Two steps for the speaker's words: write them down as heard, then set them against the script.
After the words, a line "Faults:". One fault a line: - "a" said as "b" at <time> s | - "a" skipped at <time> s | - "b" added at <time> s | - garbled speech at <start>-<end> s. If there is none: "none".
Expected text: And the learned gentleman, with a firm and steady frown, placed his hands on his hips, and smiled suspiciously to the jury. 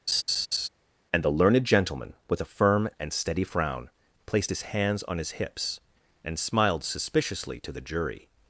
And the learned gentleman, with a firm and steady frown, placed his hands on his hips, and smiled suspiciously to the jury.
Faults:
none